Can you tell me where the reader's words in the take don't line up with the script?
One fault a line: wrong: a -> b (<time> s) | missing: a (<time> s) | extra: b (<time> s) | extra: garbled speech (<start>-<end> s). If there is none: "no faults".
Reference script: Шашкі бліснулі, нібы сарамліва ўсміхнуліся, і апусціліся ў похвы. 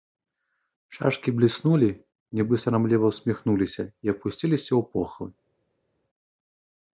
no faults